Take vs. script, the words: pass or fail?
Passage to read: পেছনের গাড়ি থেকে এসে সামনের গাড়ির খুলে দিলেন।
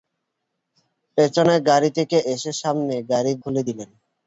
pass